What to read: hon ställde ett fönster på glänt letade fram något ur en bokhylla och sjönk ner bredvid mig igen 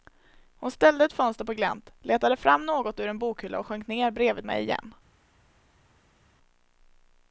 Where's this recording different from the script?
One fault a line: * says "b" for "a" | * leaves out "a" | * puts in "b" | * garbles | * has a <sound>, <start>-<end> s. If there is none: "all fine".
all fine